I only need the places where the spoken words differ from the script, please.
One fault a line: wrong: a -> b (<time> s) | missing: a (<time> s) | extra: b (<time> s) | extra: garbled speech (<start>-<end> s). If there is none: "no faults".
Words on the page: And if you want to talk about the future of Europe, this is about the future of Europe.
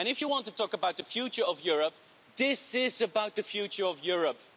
no faults